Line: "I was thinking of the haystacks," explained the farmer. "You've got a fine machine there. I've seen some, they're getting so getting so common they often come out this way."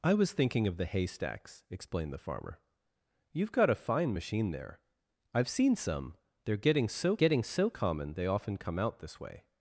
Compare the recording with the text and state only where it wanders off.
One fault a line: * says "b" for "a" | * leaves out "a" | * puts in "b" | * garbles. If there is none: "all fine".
all fine